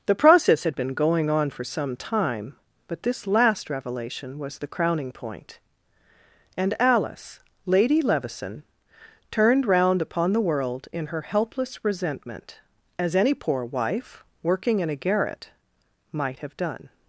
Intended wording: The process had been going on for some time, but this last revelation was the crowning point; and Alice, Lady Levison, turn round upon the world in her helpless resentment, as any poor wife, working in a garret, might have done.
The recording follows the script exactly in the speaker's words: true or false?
false